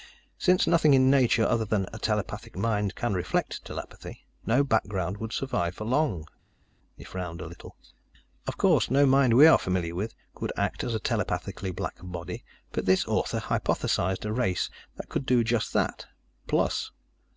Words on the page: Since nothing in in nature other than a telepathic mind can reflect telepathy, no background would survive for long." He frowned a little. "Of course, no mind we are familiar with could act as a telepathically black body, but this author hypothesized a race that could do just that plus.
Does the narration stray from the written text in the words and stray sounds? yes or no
yes